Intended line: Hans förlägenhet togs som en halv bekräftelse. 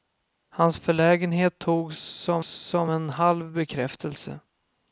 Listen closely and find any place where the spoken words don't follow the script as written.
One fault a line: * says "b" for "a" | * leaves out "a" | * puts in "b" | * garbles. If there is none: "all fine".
* puts in "som"